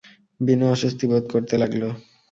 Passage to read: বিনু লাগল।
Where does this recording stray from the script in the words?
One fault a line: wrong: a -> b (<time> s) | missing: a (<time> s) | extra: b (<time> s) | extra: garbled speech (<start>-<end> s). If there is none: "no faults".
extra: অস্বস্তি বোধ করতে (0.7 s)